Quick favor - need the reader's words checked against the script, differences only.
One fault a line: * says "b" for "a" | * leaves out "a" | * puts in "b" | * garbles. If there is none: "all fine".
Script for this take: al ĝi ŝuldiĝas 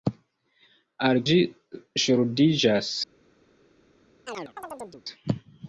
all fine